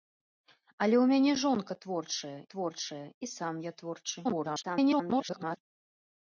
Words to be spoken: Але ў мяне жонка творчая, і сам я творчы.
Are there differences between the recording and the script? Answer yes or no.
yes